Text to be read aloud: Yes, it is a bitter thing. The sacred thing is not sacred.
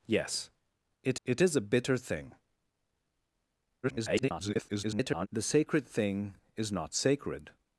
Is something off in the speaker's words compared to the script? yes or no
yes